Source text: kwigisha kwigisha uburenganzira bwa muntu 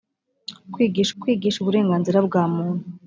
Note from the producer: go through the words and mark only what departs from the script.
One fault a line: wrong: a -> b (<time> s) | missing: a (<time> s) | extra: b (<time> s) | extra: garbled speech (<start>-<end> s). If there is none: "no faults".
no faults